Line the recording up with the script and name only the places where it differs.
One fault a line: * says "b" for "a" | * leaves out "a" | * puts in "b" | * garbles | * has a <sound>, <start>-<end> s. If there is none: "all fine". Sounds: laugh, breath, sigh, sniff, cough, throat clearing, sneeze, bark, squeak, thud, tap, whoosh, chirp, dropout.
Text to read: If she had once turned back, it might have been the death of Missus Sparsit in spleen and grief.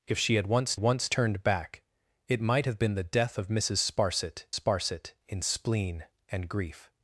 * puts in "once"
* puts in "Sparsit"